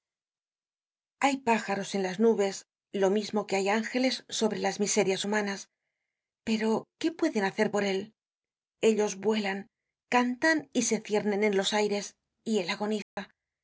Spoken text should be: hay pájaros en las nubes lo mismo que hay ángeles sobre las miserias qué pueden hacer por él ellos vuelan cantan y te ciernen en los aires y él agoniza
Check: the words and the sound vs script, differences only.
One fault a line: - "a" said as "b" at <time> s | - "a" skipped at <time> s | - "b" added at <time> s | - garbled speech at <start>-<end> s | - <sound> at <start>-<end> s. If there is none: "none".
- "humanas pero" added at 5.2 s
- "te" said as "se" at 10.8 s
- dropout at 13.0-13.2 s